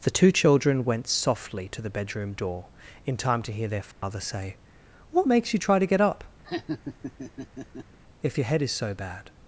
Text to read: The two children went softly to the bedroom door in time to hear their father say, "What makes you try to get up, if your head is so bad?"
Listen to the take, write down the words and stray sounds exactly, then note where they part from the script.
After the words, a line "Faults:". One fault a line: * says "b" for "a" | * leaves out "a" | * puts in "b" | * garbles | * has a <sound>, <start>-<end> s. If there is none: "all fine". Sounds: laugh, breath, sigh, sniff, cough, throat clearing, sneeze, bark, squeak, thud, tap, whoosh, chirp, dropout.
The two children went softly to the bedroom door in time to hear their father say, "What makes you try to get up, if your head is so bad?"
Faults:
* has a dropout, 3.9-4.0 s
* has a laugh, 6.4-8.0 s